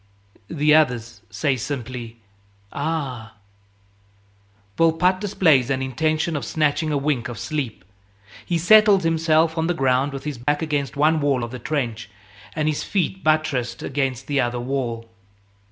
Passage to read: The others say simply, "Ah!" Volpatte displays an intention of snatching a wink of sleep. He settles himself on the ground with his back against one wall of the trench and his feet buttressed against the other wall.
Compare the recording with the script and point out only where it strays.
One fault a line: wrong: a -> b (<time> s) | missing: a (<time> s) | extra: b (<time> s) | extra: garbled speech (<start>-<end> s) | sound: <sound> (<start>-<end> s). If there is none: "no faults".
sound: dropout (10.4-10.5 s)